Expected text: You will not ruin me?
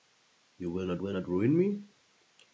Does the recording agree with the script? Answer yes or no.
no